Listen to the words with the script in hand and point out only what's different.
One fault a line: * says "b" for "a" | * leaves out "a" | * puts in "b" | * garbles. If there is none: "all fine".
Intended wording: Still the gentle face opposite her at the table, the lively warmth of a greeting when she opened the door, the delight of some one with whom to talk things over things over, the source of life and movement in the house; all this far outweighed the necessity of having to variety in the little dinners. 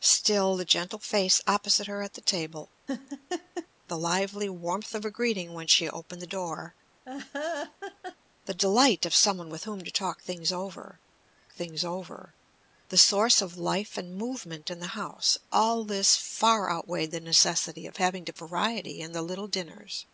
all fine